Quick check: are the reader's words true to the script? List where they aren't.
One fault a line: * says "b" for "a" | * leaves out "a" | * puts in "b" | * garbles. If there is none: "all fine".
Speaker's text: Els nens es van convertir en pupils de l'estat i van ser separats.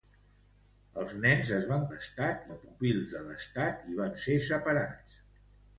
* says "l'estat" for "convertir"